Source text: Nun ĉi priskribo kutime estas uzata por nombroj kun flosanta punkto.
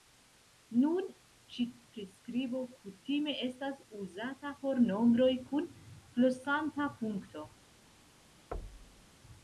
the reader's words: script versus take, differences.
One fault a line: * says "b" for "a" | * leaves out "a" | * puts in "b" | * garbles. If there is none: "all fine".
all fine